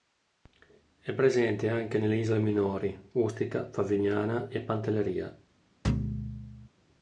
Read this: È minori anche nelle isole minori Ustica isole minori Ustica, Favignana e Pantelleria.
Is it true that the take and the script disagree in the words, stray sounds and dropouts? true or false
true